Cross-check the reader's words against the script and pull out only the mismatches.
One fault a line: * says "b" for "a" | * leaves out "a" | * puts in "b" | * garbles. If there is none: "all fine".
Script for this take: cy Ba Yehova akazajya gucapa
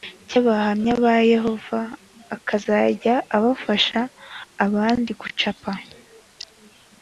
* puts in "Abahamya"
* puts in "afasha abandi"